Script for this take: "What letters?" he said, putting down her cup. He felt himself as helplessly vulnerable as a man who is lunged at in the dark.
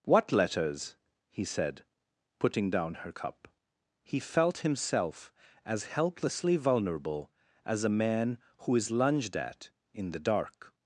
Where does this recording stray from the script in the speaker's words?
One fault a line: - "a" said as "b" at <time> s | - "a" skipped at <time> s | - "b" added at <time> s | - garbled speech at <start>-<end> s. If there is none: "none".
none